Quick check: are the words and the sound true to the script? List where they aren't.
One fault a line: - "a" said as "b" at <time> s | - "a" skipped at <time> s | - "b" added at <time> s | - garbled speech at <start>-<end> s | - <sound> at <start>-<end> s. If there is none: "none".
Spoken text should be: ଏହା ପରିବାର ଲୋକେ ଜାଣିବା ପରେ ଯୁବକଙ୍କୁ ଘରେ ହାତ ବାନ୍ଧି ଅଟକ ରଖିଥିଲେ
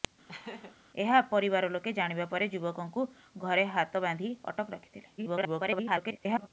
- laugh at 0.3-0.8 s
- garbled speech at 5.2-6.5 s